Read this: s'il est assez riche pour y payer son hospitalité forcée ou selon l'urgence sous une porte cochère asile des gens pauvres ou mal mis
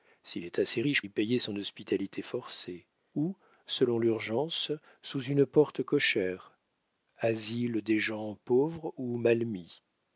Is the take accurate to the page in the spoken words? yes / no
no